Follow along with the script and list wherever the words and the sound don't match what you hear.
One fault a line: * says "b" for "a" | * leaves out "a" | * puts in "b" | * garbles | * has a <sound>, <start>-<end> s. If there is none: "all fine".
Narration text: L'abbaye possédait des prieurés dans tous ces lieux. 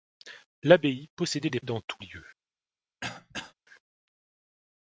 * leaves out "prieurés"
* leaves out "ces"
* has a throat clearing, 3.0-3.5 s